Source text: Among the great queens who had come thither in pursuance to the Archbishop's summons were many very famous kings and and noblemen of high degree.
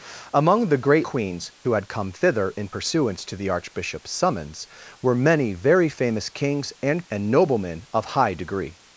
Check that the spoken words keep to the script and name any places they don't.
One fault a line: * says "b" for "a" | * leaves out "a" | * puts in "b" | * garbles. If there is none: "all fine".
all fine